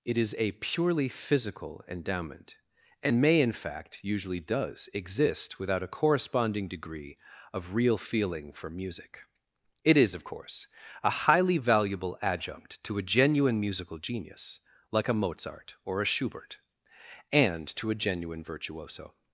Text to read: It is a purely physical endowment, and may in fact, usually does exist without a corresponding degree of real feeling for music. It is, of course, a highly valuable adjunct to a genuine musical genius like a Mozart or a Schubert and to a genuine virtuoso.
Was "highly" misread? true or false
false